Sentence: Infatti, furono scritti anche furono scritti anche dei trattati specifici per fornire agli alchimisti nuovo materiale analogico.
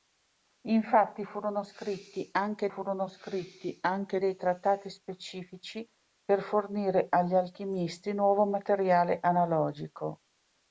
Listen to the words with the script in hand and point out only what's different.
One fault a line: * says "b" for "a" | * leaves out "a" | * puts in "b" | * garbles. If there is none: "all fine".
all fine